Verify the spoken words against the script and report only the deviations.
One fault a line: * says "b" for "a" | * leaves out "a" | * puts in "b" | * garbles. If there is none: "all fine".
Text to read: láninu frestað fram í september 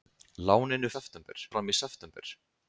* says "september" for "frestað"